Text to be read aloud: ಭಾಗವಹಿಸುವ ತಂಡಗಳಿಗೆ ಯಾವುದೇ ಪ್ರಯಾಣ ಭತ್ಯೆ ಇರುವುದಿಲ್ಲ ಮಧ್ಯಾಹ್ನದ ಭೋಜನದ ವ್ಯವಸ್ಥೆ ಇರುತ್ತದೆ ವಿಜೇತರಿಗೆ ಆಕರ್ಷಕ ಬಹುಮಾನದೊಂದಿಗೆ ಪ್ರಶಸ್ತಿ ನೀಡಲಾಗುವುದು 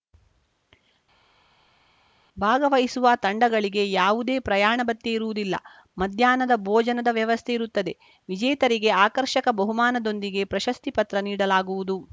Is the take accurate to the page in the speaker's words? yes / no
no